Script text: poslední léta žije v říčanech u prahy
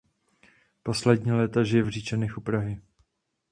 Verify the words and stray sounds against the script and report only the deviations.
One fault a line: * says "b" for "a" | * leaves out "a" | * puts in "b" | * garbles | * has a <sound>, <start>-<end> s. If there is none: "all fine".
all fine